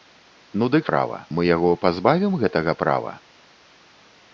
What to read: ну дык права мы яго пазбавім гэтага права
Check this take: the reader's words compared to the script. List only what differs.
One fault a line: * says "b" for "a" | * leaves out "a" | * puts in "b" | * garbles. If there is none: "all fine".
all fine